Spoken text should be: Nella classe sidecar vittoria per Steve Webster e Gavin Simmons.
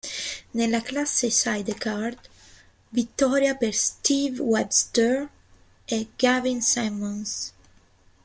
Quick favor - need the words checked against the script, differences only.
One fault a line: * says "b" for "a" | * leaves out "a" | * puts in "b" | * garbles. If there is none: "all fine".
all fine